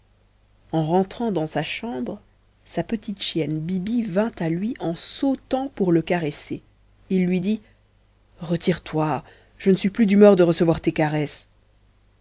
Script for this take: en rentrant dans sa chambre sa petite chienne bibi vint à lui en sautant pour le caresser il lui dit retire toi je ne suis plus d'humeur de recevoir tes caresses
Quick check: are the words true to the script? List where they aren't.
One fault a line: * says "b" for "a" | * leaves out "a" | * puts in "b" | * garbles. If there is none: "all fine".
all fine